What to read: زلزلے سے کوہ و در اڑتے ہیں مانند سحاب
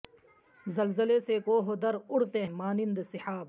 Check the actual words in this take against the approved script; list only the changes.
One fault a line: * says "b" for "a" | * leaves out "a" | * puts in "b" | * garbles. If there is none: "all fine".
* leaves out "ہیں"